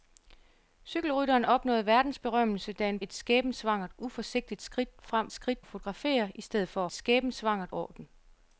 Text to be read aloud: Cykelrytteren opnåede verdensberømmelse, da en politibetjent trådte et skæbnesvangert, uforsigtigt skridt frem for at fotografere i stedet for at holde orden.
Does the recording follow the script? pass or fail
fail